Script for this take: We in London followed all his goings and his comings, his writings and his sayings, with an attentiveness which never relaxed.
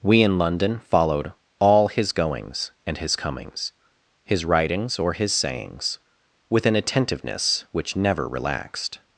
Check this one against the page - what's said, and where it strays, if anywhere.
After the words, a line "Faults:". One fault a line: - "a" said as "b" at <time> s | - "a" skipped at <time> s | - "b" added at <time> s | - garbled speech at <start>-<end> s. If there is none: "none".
We in London followed all his goings and his comings, his writings or his sayings, with an attentiveness which never relaxed.
Faults:
- "and" said as "or" at 5.0 s